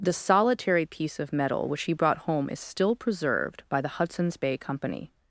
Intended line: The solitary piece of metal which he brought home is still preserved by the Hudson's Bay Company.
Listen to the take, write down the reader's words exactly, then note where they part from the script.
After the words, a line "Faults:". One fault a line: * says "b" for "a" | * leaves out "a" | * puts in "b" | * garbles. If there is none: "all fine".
The solitary piece of metal which he brought home is still preserved by the Hudson's Bay Company.
Faults:
all fine